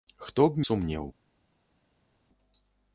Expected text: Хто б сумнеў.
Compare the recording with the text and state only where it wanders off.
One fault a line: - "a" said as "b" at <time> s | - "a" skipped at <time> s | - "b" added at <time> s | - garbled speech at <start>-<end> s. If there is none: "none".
none